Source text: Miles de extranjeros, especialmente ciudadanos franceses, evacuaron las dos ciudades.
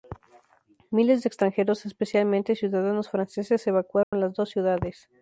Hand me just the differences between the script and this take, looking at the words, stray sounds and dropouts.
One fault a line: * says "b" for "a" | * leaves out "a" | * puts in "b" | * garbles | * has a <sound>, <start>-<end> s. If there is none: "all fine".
* has a dropout, 4.0-4.1 s